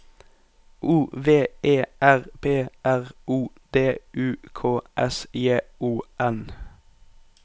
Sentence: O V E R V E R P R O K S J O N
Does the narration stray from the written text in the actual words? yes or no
yes